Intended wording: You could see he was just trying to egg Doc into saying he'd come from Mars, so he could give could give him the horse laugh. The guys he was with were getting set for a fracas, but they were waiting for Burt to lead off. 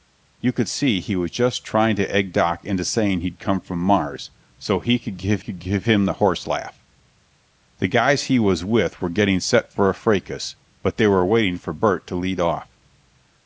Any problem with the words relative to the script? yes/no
no